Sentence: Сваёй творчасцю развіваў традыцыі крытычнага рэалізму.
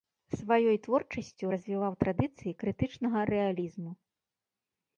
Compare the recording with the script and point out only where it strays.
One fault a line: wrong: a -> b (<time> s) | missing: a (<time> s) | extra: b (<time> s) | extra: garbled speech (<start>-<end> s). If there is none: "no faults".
no faults